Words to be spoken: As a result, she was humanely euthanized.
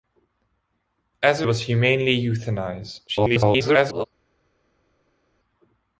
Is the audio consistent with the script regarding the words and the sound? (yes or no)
no